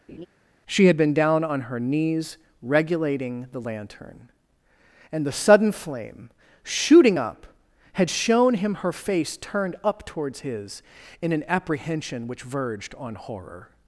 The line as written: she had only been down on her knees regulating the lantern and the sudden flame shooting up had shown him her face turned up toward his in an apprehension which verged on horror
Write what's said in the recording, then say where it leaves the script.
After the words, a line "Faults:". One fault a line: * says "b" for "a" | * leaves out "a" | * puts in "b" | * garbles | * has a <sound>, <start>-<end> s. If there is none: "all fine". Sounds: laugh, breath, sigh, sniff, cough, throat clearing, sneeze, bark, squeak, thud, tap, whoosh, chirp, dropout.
she had been down on her knees regulating the lantern and the sudden flame shooting up had shown him her face turned up towards his in an apprehension which verged on horror
Faults:
* has a laugh, 0.1-0.3 s
* leaves out "only"
* says "towards" for "toward"